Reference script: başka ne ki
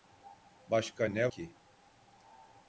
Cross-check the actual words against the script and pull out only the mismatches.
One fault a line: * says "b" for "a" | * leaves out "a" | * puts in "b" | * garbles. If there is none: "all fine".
all fine